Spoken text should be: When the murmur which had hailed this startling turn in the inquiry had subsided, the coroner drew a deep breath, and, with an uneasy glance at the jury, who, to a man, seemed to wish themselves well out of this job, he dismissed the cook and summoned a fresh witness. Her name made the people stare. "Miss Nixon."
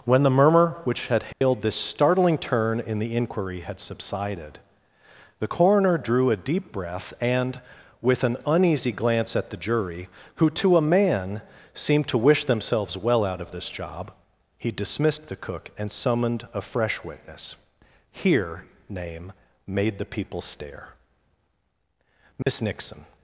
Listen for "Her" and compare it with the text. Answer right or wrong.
wrong